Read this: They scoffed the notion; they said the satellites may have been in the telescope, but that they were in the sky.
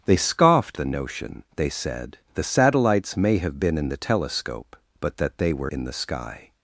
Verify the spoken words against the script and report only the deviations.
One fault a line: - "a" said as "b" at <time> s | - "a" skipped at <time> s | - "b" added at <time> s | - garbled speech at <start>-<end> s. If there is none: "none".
none